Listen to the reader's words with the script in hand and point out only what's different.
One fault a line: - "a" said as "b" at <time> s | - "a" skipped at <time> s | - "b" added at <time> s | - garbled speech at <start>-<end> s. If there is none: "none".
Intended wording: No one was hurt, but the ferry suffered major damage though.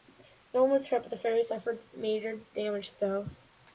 none